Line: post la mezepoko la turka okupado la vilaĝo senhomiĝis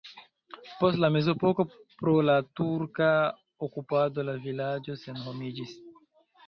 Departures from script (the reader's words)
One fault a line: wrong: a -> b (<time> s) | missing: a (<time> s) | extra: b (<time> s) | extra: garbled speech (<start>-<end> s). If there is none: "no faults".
extra: pro (2.0 s)